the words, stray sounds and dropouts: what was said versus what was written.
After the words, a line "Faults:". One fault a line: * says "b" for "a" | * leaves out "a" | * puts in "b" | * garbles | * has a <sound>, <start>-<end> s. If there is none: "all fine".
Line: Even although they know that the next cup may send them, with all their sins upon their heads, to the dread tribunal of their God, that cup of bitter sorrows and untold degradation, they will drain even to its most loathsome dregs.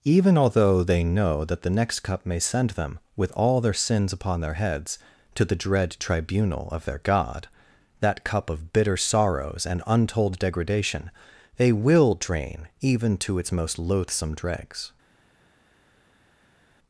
Even although they know that the next cup may send them, with all their sins upon their heads, to the dread tribunal of their God, that cup of bitter sorrows and untold degradation, they will drain even to its most loathsome dregs.
Faults:
all fine